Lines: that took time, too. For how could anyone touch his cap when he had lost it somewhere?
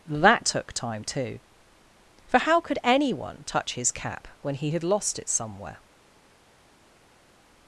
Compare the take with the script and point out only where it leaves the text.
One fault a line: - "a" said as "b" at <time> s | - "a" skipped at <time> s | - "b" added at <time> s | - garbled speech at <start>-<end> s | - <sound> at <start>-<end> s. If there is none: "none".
none